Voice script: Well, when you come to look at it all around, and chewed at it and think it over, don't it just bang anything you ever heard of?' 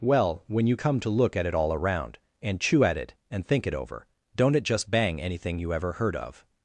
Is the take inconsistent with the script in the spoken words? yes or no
yes